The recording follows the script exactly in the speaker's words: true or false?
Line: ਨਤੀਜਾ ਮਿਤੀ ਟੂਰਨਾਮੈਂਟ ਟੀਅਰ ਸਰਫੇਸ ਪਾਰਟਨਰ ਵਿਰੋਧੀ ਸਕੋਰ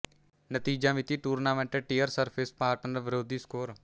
true